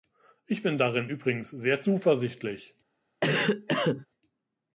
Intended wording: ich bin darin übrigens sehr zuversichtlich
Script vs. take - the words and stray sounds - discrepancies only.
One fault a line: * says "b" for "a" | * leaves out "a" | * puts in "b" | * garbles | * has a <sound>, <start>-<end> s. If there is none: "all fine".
* has a cough, 3.2-4.1 s